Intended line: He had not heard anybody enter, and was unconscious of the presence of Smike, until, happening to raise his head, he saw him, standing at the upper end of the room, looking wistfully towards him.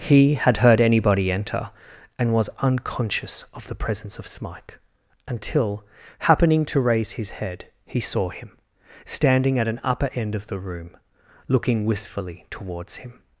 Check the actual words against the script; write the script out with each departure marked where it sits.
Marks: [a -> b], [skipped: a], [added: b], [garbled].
He had [skipped: not] heard anybody enter, and was unconscious of the presence of Smike, until, happening to raise his head, he saw him, standing at [the -> an] upper end of the room, looking wistfully towards him.